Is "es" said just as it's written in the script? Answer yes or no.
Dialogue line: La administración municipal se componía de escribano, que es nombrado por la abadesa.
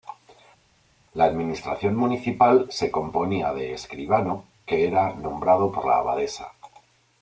no